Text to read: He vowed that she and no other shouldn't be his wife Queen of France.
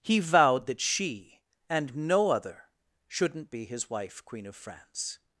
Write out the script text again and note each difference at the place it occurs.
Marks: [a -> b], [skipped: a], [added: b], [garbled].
He vowed that she and no other shouldn't be his wife Queen of France.